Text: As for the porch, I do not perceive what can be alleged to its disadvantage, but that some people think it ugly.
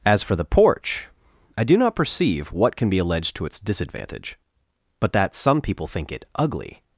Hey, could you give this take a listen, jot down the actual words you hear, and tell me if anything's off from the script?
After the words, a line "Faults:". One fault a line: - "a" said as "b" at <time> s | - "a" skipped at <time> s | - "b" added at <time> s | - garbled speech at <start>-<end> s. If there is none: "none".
As for the porch, I do not perceive what can be alleged to its disadvantage, but that some people think it ugly.
Faults:
none